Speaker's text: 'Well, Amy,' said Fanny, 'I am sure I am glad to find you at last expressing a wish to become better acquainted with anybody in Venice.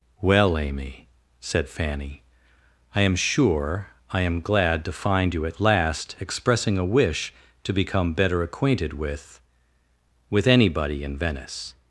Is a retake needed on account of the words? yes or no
yes